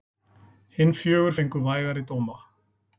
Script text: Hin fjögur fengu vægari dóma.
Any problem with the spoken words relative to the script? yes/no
no